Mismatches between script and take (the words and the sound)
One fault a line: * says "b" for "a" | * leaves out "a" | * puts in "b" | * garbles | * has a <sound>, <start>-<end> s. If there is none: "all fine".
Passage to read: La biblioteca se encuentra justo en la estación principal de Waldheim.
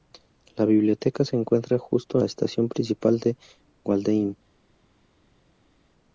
* leaves out "en"